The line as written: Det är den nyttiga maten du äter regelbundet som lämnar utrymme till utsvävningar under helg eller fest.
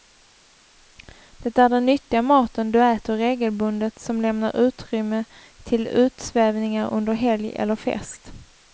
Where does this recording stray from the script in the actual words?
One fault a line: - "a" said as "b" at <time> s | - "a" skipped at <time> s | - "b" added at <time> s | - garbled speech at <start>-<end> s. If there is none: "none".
none